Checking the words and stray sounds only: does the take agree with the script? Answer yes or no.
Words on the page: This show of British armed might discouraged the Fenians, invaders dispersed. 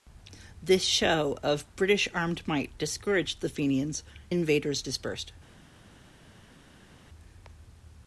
yes